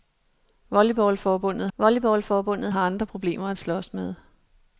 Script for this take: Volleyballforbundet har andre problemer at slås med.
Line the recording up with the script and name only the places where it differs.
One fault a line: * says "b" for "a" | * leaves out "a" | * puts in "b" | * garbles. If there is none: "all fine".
* puts in "volleyballforbundet"